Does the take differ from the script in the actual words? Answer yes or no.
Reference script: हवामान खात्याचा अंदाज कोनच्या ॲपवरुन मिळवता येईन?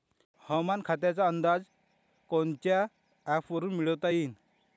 no